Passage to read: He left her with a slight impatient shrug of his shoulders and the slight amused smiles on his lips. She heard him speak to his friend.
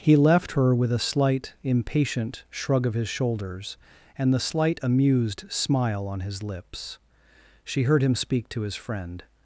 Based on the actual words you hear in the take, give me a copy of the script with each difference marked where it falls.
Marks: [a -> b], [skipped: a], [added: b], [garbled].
He left her with a slight impatient shrug of his shoulders and the slight amused [smiles -> smile] on his lips. She heard him speak to his friend.